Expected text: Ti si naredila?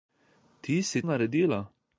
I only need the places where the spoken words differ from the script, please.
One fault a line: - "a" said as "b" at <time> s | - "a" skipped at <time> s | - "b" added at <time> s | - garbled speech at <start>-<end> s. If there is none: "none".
none